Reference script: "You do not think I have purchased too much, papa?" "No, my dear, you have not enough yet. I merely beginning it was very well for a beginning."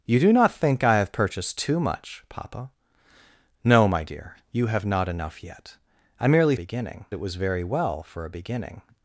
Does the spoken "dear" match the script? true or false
true